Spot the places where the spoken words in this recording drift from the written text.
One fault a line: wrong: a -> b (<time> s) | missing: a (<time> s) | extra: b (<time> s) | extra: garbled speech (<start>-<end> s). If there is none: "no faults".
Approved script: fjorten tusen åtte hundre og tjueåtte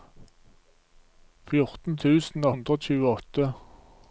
missing: åtte (2.5 s)